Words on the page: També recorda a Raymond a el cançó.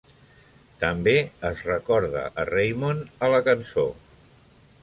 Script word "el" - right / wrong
wrong